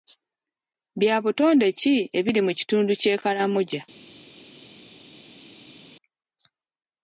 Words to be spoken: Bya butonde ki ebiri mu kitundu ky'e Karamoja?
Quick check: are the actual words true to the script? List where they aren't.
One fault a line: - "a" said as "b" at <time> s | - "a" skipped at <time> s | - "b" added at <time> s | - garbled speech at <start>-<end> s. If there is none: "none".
none